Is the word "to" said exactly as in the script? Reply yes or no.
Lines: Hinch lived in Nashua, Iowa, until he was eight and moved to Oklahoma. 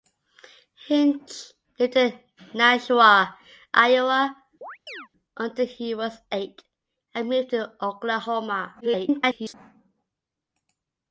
yes